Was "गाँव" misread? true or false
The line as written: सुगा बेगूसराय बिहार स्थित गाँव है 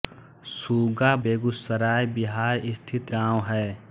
false